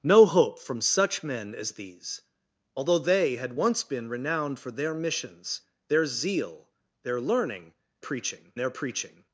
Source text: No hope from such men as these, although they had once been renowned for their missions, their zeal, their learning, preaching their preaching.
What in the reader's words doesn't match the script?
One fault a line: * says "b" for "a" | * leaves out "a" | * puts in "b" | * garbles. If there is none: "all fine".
all fine